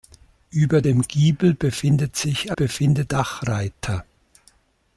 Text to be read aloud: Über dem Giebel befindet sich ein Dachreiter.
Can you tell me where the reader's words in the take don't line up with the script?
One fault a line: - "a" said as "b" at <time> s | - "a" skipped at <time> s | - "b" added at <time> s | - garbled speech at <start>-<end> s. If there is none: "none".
- "ein" said as "befindet" at 2.5 s